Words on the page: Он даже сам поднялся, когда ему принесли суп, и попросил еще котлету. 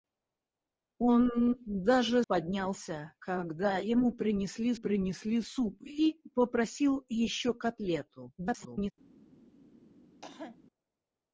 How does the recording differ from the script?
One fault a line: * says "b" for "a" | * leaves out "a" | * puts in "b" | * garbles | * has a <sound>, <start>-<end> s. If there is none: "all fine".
* leaves out "сам"
* puts in "принесли"
* garbles
* has a cough, 10.2-10.6 s